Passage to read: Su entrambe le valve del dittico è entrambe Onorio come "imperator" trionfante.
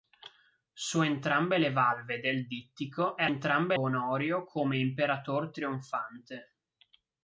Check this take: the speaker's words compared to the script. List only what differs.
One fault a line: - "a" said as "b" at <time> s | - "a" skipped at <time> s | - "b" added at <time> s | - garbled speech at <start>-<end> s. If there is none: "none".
none